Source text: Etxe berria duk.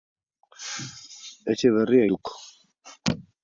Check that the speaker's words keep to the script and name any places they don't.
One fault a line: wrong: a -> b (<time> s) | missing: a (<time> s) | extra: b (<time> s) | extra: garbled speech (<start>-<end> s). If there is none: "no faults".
no faults